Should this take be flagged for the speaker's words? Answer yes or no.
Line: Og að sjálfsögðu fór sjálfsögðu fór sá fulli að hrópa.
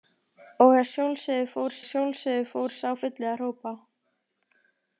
no